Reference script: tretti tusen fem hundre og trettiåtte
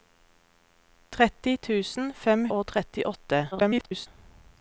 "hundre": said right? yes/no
no